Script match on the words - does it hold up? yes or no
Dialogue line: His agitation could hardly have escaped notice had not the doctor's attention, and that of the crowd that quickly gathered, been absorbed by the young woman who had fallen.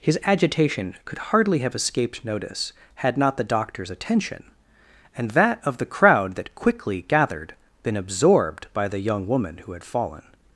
yes